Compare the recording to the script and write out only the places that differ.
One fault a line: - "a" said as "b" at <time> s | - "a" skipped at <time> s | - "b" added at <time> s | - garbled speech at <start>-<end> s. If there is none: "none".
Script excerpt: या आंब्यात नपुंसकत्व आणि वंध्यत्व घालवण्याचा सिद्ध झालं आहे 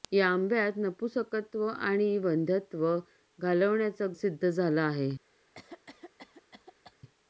none